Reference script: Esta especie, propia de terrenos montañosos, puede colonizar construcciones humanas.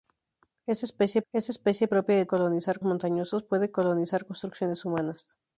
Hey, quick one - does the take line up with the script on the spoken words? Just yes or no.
no